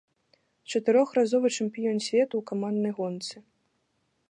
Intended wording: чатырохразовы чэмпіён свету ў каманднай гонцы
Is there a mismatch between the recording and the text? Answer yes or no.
no